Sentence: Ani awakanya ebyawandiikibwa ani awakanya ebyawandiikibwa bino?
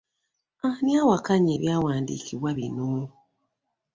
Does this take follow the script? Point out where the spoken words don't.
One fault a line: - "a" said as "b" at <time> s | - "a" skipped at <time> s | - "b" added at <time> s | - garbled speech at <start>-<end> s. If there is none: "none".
- "ani awakanya ebyawandiikibwa" skipped at 2.5 s